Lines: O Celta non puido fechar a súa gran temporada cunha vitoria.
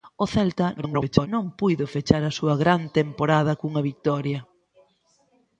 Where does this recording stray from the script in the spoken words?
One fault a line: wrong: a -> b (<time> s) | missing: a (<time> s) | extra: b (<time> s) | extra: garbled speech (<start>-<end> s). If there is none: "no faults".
extra: garbled speech (0.8-1.3 s)